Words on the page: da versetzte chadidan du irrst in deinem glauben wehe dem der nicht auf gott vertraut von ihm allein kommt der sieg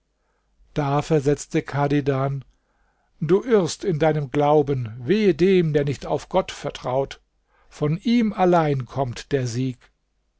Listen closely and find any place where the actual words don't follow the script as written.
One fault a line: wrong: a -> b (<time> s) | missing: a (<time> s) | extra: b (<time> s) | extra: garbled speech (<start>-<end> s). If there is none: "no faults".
no faults